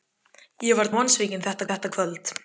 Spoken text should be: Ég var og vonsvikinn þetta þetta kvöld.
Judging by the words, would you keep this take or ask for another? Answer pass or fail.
pass